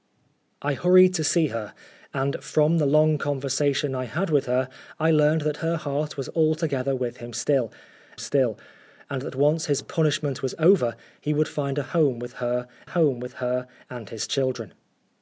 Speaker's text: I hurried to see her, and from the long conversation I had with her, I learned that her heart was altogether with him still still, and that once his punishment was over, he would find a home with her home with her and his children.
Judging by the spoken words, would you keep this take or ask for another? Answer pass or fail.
pass